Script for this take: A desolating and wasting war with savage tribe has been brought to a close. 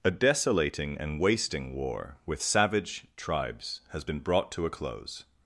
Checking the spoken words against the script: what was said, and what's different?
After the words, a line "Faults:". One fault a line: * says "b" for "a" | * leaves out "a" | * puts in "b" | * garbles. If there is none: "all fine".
A desolating and wasting war with savage tribes has been brought to a close.
Faults:
* says "tribes" for "tribe"